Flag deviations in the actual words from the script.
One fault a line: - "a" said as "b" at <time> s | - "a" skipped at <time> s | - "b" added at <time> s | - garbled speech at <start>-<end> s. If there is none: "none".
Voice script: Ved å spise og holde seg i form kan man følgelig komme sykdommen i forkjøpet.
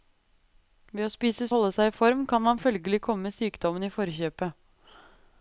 none